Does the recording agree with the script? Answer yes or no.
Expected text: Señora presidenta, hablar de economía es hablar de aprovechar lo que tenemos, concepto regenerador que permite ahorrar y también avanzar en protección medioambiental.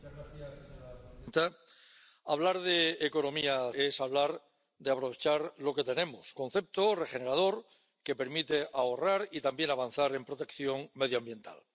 yes